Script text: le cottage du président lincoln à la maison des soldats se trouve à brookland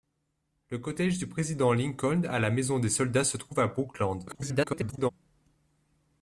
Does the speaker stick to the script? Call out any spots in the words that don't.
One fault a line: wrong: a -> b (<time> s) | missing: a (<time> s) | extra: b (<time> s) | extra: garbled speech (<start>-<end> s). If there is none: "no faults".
extra: garbled speech (4.3-5.1 s)